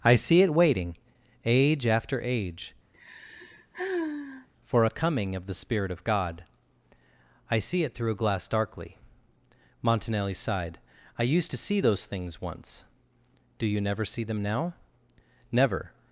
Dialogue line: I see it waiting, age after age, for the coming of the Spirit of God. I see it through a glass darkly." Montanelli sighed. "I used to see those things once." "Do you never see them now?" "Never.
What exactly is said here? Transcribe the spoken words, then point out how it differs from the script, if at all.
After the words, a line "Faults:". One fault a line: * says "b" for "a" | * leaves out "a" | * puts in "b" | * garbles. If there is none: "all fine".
I see it waiting, age after age, for a coming of the Spirit of God. I see it through a glass darkly." Montanelli sighed. "I used to see those things once." "Do you never see them now?" "Never.
Faults:
* says "a" for "the"